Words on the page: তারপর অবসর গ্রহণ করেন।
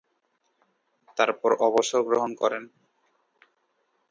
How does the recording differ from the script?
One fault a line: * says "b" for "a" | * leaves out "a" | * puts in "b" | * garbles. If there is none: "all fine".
all fine